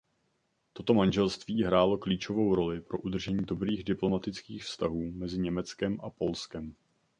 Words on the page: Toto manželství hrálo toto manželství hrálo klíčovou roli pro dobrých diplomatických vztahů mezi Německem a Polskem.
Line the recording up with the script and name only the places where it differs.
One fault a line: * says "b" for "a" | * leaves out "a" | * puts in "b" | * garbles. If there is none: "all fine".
* leaves out "toto manželství hrálo"
* puts in "udržení"